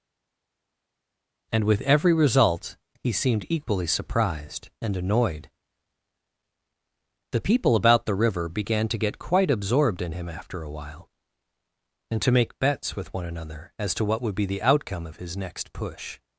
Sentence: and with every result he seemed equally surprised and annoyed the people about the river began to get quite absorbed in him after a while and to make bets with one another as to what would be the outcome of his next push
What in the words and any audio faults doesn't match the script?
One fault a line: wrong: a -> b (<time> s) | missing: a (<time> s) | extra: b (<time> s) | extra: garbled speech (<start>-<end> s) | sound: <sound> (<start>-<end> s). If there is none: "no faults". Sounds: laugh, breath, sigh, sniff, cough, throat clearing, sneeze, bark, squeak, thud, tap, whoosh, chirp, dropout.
no faults